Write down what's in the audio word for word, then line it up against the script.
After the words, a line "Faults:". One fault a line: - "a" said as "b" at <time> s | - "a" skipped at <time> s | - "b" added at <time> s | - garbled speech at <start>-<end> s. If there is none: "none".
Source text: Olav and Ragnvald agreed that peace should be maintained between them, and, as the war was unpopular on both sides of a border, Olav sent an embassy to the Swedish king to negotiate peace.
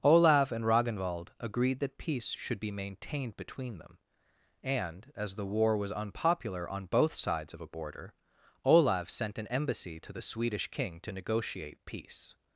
Olav and Ragnvald agreed that peace should be maintained between them, and, as the war was unpopular on both sides of a border, Olav sent an embassy to the Swedish king to negotiate peace.
Faults:
none